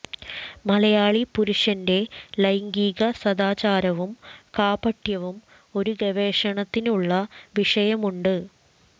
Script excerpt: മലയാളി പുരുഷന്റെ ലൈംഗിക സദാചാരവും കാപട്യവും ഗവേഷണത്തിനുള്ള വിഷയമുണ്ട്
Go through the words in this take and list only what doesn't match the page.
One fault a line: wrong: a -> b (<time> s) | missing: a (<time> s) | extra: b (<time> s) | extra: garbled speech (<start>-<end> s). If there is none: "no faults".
extra: ഒരു (5.8 s)